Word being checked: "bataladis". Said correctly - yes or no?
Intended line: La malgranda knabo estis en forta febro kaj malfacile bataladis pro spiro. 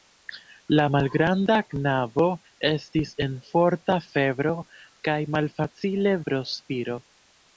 no